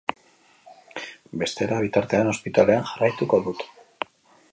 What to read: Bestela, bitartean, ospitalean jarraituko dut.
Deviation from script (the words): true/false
false